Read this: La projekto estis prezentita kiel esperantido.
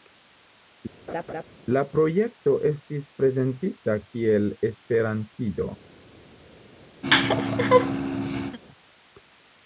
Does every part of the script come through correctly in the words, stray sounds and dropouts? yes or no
no